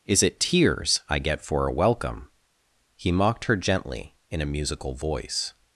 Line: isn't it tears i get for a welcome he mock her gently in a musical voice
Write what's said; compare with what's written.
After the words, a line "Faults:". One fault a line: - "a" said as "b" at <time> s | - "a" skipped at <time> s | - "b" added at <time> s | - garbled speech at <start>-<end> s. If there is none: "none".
is it tears i get for a welcome he mocked her gently in a musical voice
Faults:
- "isn't" said as "is" at 0.1 s
- "mock" said as "mocked" at 3.1 s